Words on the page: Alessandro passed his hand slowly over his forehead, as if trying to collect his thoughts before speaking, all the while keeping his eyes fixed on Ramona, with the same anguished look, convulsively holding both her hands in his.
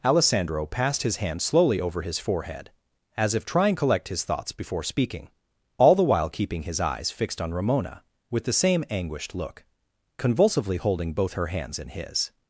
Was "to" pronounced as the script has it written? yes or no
no